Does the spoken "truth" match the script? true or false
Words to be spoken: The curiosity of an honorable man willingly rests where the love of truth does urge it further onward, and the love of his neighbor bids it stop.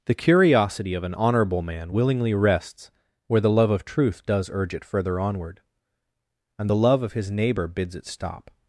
true